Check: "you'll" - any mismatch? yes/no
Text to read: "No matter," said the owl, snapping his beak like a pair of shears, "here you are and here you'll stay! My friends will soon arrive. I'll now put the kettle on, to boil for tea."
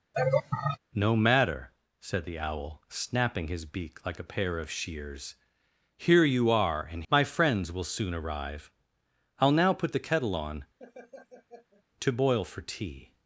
yes